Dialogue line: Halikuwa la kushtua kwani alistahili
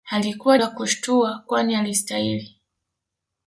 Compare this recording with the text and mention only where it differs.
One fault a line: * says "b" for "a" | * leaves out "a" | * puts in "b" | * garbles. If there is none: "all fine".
all fine